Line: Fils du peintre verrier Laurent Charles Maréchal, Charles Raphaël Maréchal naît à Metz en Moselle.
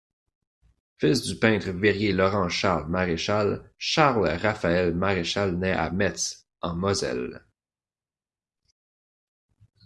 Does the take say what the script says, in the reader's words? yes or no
yes